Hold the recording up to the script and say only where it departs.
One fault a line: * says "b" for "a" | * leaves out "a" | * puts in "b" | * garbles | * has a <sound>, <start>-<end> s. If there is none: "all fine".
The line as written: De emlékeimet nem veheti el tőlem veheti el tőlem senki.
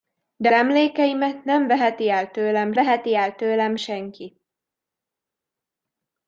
all fine